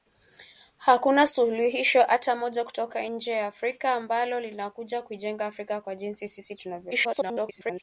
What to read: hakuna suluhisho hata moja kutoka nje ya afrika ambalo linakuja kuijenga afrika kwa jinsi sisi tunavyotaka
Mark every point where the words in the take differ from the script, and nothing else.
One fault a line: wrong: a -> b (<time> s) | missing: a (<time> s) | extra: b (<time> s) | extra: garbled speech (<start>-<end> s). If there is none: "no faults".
extra: garbled speech (6.9-7.8 s)